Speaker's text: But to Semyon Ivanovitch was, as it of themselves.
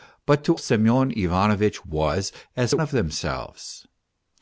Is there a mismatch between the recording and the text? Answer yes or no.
no